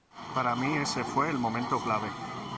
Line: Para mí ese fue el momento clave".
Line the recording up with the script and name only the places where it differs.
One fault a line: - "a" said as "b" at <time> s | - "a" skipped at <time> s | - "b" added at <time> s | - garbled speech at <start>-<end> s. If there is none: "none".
none